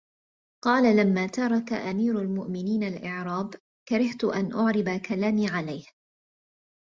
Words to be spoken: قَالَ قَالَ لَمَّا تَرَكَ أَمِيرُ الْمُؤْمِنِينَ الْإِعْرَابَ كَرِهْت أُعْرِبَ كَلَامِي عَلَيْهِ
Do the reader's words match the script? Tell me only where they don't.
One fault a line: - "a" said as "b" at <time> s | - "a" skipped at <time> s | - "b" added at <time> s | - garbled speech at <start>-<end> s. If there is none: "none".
- "قَالَ" skipped at 1.0 s
- "أَنْ" added at 4.2 s